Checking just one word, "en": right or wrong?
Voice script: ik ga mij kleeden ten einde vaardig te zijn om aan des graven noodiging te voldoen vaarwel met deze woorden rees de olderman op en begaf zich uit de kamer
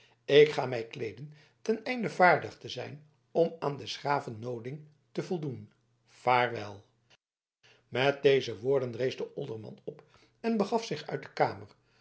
right